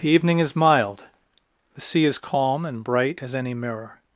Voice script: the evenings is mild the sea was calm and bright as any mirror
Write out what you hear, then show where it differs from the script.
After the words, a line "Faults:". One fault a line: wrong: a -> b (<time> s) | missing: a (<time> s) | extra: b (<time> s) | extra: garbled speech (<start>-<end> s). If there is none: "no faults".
the evening is mild the sea is calm and bright as any mirror
Faults:
wrong: evenings -> evening (0.1 s)
wrong: was -> is (2.0 s)